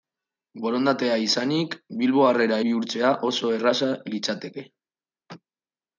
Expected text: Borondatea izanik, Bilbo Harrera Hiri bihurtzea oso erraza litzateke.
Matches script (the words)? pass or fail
fail